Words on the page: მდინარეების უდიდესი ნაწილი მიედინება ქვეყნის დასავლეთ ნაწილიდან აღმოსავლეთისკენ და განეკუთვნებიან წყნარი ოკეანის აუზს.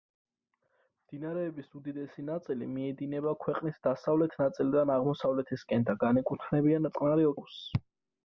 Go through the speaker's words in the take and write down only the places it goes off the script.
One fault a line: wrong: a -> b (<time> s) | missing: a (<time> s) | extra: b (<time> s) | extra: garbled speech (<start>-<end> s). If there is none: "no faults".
missing: ოკეანის (7.3 s)